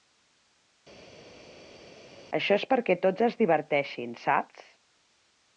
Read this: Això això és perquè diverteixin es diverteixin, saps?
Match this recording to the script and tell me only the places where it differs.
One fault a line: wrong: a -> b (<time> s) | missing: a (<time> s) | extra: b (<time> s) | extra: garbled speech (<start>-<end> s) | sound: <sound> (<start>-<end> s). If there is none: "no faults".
missing: això (2.6 s)
wrong: diverteixin -> tots (3.0 s)